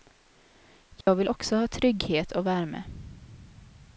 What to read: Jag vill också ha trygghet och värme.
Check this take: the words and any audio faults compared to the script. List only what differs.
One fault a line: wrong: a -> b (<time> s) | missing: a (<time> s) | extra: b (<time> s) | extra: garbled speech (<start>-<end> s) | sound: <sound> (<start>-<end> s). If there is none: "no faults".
sound: dropout (1.0-1.1 s)